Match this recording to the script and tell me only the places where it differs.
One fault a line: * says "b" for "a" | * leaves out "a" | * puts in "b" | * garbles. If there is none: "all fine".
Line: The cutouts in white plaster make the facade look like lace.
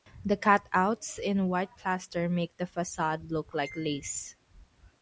all fine